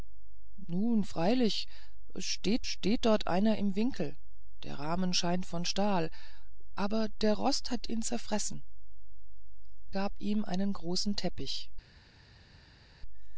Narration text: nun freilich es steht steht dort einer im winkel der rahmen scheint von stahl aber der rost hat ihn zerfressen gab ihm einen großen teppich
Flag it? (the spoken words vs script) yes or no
no